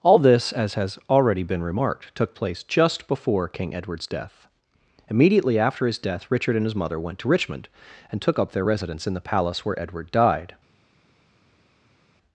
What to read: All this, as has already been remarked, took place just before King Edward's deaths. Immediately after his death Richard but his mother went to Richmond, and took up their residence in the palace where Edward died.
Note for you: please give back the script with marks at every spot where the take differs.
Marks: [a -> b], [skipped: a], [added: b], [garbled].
All this, as has already been remarked, took place just before King Edward's [deaths. -> death] Immediately after his death Richard [but -> and] his mother went to Richmond, and took up their residence in the palace where Edward died.